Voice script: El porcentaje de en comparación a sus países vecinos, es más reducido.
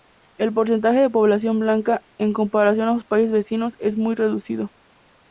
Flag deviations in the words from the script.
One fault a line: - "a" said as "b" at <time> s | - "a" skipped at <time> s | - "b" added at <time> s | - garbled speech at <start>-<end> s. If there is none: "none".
- "población blanca" added at 1.1 s
- "más" said as "muy" at 4.0 s